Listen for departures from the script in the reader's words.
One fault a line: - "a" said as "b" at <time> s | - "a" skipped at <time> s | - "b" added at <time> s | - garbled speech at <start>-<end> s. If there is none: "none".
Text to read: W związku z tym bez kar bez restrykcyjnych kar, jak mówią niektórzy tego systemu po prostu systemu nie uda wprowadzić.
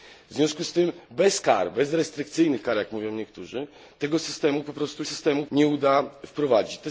none